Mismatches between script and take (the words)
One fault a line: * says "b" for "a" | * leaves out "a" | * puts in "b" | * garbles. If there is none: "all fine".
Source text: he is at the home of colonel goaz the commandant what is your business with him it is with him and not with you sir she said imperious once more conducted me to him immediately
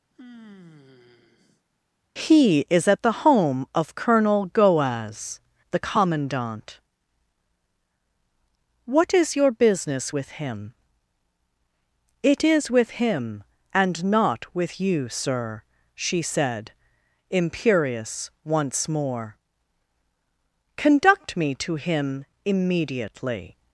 * says "conduct" for "conducted"